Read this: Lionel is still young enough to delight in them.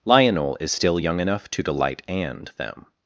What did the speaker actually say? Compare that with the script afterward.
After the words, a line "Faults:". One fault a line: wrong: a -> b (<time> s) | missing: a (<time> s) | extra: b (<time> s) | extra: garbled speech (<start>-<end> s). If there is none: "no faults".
Lionel is still young enough to delight and them.
Faults:
wrong: in -> and (2.1 s)